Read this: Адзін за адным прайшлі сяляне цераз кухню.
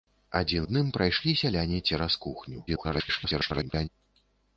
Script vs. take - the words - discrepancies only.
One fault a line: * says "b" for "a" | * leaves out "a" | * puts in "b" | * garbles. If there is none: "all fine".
* leaves out "за"
* garbles